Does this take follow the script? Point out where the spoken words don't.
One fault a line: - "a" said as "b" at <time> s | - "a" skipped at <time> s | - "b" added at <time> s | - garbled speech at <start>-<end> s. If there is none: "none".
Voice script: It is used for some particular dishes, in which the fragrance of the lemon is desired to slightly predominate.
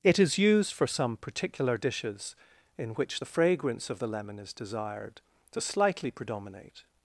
none